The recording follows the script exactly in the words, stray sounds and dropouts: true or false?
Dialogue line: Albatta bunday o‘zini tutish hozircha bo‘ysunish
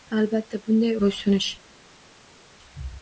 false